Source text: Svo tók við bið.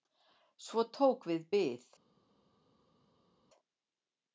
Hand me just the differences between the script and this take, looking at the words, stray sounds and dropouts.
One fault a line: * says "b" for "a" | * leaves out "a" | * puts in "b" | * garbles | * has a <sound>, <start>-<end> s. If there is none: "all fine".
all fine